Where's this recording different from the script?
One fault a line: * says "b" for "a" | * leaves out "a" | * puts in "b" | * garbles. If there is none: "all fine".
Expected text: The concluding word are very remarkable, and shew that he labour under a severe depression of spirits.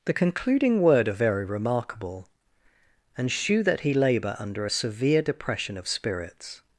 all fine